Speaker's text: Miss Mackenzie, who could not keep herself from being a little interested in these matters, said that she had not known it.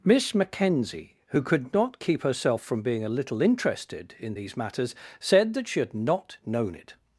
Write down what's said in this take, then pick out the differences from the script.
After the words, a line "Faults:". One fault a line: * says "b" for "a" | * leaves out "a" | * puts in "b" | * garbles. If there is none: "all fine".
Miss Mackenzie, who could not keep herself from being a little interested in these matters, said that she had not known it.
Faults:
all fine